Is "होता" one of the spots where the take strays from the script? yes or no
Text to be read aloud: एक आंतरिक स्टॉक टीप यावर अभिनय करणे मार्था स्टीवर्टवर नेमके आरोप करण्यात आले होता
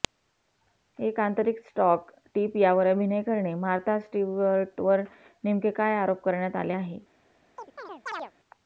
yes